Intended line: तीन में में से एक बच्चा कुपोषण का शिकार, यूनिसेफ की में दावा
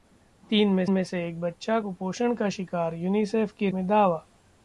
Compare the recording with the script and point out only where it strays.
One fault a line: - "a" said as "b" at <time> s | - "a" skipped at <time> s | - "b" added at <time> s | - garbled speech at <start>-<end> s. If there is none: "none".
none